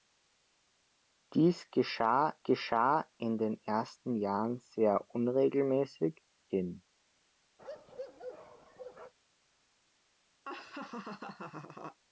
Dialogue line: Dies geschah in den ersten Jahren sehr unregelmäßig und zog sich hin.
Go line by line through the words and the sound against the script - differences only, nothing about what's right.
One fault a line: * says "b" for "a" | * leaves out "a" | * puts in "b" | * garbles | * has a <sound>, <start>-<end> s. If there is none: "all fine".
* puts in "geschah"
* leaves out "und zog sich"
* has a bark, 7.6-9.1 s
* has a laugh, 10.4-12.0 s